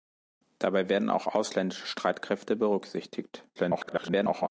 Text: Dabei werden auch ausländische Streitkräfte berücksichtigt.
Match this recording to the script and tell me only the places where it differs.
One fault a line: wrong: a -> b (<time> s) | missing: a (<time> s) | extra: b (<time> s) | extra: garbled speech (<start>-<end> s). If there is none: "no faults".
extra: garbled speech (3.6-4.5 s)